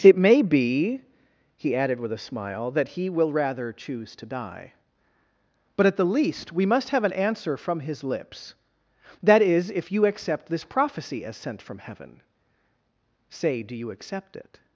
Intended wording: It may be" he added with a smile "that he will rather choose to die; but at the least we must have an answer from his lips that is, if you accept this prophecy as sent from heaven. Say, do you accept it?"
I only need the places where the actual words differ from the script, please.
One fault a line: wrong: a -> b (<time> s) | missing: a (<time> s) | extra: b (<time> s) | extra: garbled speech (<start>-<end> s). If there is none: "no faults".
no faults